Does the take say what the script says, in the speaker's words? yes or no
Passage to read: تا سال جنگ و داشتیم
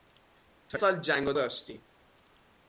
yes